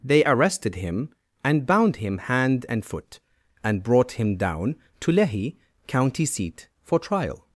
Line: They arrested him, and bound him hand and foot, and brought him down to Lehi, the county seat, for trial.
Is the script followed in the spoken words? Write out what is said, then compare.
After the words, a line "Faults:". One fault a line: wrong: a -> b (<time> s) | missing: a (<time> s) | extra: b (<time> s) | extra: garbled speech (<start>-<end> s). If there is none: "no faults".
They arrested him, and bound him hand and foot, and brought him down to Lehi, county seat, for trial.
Faults:
missing: the (5.6 s)